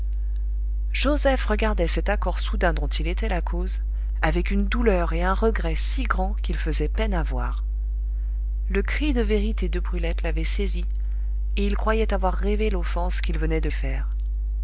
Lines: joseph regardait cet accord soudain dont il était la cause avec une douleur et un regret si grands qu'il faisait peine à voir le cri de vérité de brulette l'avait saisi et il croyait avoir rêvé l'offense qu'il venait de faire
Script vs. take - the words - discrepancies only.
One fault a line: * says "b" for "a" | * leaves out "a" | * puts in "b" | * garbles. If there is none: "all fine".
all fine